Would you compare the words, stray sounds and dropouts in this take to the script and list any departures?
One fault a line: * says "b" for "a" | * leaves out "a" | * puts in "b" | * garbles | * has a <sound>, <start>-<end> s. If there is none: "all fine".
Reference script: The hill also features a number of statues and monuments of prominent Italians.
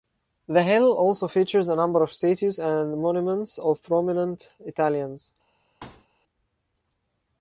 * has a thud, 5.8-6.1 s